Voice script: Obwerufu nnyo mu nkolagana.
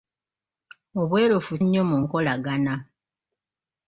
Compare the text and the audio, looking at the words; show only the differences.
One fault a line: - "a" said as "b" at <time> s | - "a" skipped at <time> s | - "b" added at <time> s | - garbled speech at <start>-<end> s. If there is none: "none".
none